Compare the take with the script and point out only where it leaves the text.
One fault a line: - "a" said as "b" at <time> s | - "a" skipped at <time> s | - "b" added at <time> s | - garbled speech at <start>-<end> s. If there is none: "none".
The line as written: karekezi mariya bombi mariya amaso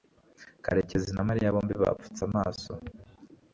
- "na" added at 1.1 s
- "mariya" said as "bapfutse" at 1.8 s